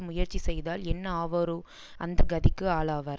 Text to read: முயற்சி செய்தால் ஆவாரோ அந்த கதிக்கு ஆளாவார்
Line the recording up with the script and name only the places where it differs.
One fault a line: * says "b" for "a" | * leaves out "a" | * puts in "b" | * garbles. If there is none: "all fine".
* puts in "என்ன"